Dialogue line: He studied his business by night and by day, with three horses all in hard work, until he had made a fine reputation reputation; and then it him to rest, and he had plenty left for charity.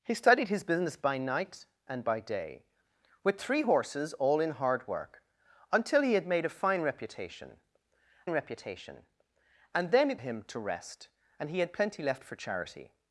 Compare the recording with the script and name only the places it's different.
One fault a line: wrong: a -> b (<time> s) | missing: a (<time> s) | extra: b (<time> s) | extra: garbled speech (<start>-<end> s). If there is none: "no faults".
no faults